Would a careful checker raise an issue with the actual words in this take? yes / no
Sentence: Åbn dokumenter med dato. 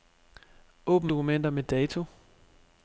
no